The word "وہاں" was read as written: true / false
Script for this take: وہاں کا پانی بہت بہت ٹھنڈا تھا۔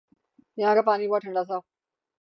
false